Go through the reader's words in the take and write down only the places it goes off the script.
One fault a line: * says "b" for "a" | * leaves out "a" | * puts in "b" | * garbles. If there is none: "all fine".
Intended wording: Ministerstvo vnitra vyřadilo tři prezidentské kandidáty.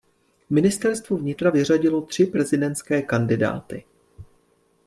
all fine